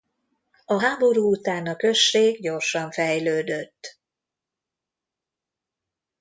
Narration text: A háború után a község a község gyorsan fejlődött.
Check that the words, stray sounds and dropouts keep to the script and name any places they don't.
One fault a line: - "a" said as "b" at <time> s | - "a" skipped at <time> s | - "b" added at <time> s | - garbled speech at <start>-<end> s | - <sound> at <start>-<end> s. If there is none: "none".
- "a község" skipped at 2.4 s